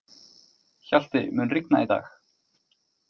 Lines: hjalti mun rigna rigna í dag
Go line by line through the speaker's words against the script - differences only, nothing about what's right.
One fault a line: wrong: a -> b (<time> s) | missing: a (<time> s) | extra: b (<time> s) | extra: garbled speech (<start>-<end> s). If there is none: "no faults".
missing: rigna (1.8 s)